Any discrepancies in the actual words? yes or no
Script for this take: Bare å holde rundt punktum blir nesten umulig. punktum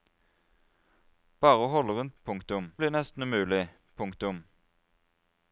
no